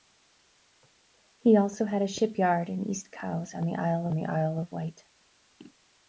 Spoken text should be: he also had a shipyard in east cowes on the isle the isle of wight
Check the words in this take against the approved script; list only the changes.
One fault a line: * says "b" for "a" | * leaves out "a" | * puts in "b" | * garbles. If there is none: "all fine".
all fine